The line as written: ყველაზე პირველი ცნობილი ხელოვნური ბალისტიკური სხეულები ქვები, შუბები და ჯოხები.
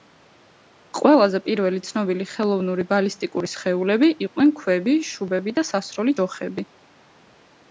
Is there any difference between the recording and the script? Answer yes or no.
yes